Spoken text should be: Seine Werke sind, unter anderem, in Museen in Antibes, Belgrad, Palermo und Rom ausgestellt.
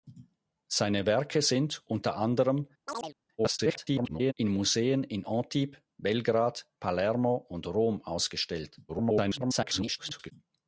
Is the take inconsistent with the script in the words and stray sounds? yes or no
yes